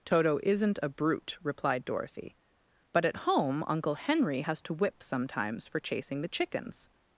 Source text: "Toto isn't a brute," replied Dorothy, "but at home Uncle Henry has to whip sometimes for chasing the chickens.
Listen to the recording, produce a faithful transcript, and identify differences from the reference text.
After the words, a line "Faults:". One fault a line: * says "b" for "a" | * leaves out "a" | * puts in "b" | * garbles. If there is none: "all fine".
"Toto isn't a brute," replied Dorothy, "but at home Uncle Henry has to whip sometimes for chasing the chickens.
Faults:
all fine